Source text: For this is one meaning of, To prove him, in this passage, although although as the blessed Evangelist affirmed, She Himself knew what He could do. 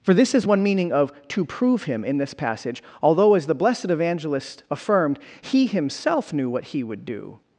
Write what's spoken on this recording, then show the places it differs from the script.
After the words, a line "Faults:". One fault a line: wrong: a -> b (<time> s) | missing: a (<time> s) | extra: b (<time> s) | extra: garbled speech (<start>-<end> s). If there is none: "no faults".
For this is one meaning of, To prove him, in this passage, although as the blessed Evangelist affirmed, He Himself knew what He would do.
Faults:
missing: although (3.3 s)
wrong: She -> He (5.4 s)
wrong: could -> would (6.8 s)